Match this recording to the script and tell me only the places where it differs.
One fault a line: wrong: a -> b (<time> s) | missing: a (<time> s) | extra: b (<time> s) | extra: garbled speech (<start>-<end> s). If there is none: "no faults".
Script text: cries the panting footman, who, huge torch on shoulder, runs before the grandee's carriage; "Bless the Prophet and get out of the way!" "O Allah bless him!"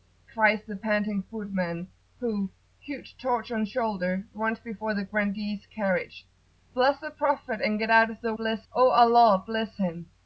wrong: way -> bless (8.4 s)